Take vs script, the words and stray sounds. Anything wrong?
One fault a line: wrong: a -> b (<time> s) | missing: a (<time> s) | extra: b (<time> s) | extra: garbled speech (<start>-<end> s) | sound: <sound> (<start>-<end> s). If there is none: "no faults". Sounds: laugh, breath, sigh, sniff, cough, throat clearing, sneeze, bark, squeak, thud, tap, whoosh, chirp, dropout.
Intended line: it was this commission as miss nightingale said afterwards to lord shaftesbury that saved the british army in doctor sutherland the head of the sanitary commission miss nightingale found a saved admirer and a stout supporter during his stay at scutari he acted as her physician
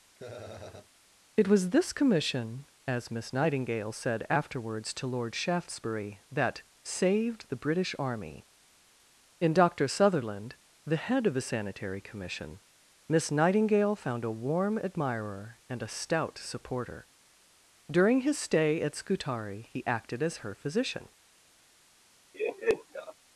sound: laugh (0.2-0.9 s)
wrong: saved -> warm (14.4 s)
sound: laugh (22.3-23.1 s)